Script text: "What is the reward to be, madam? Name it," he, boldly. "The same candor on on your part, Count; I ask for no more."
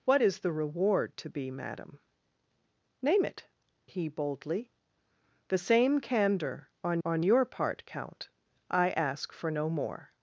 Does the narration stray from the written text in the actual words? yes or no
no